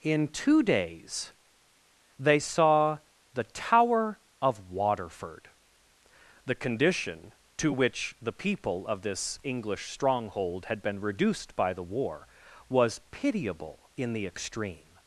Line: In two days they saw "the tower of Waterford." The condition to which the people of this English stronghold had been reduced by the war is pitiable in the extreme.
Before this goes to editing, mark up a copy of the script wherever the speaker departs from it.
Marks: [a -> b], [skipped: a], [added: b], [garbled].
In two days they saw "the tower of Waterford." The condition to which the people of this English stronghold had been reduced by the war [is -> was] pitiable in the extreme.